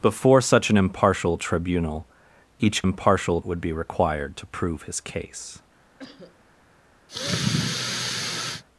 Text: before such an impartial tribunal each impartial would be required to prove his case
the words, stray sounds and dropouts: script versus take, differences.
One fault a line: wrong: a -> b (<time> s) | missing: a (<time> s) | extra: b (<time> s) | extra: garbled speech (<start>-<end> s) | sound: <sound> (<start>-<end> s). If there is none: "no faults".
sound: cough (6.0-6.4 s)
sound: sigh (7.1-8.6 s)